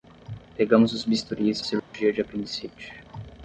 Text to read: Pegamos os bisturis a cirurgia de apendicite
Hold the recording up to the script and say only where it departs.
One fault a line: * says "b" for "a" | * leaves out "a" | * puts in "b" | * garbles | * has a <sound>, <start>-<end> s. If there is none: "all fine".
* has a dropout, 1.8-1.9 s